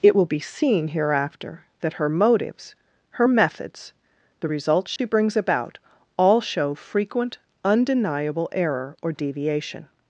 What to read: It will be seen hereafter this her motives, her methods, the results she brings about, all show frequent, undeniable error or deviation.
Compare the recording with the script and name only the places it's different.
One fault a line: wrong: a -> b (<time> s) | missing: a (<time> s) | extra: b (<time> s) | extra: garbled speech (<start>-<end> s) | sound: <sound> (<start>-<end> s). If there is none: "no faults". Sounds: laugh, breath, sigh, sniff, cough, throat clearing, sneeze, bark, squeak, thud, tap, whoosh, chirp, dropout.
wrong: this -> that (1.8 s)
sound: dropout (5.0-5.0 s)